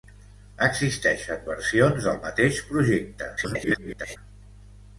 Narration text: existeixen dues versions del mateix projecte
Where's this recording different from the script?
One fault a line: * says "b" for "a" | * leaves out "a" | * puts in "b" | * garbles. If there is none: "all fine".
* leaves out "dues"
* garbles